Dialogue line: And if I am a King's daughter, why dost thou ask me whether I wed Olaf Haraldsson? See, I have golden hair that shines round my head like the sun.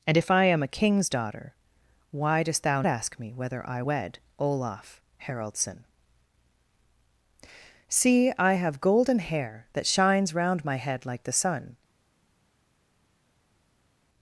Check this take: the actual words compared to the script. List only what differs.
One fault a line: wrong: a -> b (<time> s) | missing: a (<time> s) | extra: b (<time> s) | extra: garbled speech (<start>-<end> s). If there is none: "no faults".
no faults